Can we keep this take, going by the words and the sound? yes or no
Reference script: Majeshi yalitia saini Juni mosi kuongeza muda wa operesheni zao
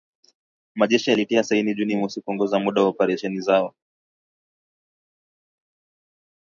yes